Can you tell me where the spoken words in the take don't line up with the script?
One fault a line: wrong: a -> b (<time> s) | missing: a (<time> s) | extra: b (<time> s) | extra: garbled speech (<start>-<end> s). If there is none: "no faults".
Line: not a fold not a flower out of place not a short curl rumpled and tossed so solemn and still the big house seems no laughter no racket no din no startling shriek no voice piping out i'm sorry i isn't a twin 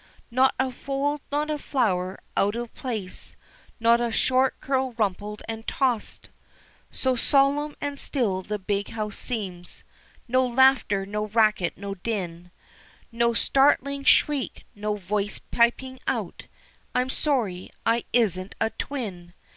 no faults